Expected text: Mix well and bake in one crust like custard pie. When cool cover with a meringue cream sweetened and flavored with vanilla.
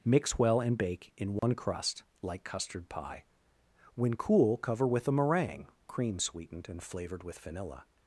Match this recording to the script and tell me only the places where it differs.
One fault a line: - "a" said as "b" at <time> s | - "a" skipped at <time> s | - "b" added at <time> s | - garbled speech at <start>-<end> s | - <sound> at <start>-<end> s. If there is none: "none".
- dropout at 1.4-1.4 s